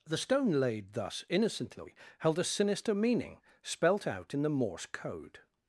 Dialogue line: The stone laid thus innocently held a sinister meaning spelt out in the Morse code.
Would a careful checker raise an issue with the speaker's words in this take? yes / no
no